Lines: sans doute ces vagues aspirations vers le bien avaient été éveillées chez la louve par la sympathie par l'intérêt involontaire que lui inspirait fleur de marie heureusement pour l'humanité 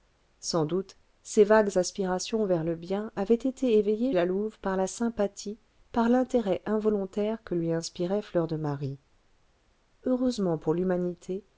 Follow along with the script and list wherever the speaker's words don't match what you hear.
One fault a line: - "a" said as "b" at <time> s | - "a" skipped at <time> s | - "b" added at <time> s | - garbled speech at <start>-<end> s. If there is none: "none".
- "chez" skipped at 4.1 s